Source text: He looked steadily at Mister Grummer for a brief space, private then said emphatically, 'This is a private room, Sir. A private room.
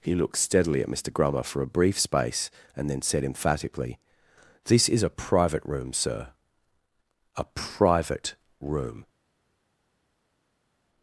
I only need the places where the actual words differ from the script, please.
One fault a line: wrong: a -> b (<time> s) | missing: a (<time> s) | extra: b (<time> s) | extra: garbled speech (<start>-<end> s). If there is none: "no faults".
wrong: private -> and (2.8 s)